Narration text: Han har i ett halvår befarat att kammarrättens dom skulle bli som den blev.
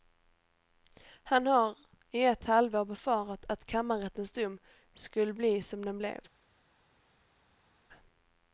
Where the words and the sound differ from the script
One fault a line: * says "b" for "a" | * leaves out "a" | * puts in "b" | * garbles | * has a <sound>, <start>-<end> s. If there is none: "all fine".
all fine